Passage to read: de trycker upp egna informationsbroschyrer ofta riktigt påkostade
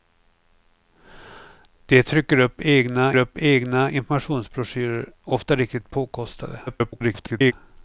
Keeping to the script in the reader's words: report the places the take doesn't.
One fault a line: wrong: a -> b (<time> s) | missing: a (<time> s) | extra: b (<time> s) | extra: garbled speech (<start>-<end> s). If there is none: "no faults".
extra: upp egna (3.2 s)
extra: garbled speech (6.7-7.5 s)